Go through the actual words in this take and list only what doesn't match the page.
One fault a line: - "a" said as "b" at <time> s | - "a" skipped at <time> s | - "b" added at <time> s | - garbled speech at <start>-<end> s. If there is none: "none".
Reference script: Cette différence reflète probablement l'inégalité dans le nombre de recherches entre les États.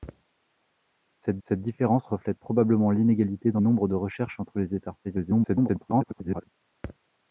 - "cette" added at 1.4 s
- "le" skipped at 3.6 s
- garbled speech at 5.0-6.5 s